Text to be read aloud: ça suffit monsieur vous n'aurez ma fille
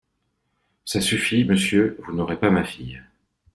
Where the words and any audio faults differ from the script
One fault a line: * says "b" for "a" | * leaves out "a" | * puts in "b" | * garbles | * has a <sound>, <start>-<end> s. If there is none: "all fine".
* puts in "pas"